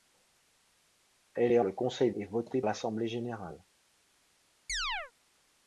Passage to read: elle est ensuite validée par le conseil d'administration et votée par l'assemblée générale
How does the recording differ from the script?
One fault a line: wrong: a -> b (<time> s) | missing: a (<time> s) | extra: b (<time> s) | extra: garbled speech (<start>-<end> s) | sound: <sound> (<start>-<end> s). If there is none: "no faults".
missing: ensuite validée par (1.6 s)
missing: d'administration (2.1 s)
missing: par (2.6 s)
sound: chirp (4.7-5.1 s)